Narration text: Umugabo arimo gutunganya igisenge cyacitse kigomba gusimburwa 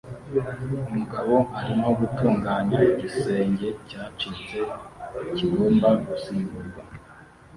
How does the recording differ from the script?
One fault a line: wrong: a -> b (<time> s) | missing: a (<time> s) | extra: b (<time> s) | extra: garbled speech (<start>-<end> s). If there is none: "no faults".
no faults